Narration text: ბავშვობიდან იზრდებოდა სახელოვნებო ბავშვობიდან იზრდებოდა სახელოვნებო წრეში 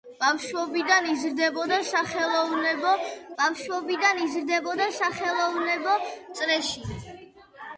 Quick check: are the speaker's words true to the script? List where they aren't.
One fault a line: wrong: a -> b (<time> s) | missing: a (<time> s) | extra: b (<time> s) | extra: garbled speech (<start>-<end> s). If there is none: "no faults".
no faults